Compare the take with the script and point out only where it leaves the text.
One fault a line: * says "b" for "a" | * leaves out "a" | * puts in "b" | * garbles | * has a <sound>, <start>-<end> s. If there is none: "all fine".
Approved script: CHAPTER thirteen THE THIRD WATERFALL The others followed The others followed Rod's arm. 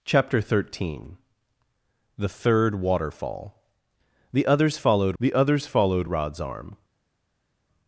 all fine